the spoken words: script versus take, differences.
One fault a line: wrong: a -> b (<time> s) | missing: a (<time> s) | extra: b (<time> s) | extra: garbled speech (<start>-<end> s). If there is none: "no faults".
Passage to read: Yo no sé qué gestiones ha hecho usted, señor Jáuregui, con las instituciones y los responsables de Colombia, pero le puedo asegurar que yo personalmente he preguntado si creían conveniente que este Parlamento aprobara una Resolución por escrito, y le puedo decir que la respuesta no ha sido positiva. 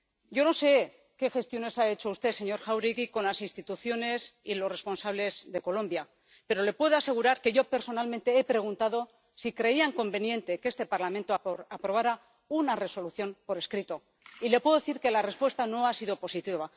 no faults